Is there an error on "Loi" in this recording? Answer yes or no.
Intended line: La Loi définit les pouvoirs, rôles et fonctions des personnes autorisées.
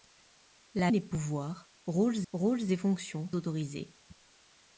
yes